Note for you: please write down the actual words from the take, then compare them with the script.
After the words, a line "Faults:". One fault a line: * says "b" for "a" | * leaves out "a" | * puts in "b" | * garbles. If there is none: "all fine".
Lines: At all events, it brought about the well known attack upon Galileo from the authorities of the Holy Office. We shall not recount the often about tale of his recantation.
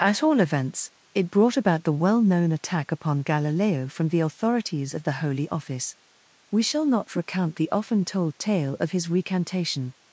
At all events, it brought about the well known attack upon Galileo from the authorities of the Holy Office. We shall not recount the often told tale of his recantation.
Faults:
* says "told" for "about"